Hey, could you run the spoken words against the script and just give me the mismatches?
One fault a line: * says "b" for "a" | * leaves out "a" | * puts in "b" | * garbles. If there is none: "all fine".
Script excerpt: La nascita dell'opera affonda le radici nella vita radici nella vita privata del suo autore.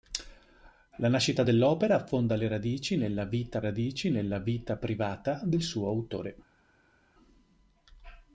all fine